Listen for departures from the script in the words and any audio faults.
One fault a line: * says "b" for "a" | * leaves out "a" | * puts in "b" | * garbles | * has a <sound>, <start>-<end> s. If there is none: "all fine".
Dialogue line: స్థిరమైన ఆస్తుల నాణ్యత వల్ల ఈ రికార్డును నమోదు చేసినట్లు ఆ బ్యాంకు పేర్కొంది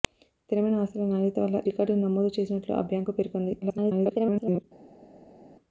* leaves out "ఈ"
* garbles